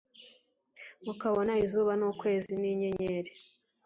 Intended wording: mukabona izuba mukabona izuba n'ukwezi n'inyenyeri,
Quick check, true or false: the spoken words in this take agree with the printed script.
false